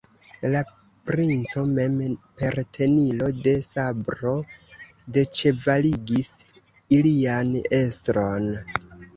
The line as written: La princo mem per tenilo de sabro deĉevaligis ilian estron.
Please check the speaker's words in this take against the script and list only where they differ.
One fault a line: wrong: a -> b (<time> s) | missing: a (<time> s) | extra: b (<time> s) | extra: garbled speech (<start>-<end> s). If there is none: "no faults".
no faults